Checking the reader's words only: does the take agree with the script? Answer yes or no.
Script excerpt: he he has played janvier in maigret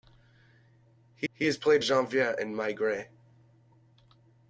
yes